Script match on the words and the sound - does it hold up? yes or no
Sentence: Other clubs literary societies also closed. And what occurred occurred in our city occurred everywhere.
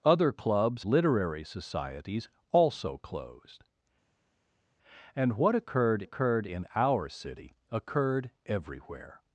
yes